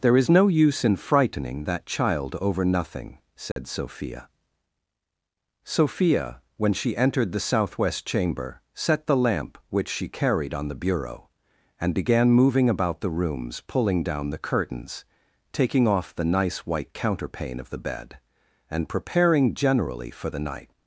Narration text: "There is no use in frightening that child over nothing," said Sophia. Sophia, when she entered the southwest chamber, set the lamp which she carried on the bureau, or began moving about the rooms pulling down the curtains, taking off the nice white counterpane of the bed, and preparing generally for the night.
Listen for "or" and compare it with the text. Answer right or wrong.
wrong